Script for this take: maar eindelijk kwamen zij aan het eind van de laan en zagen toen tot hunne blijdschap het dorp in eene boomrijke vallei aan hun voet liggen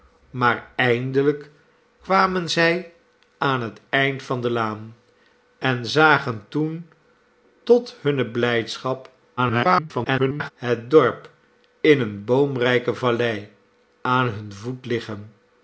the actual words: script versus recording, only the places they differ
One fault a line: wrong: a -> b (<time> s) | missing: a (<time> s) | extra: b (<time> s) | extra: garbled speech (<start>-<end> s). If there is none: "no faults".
extra: garbled speech (9.4-10.5 s)